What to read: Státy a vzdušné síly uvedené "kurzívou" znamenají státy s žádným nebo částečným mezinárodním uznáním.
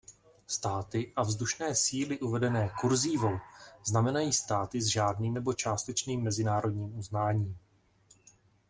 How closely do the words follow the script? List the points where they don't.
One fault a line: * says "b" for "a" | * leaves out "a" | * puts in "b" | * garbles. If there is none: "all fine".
all fine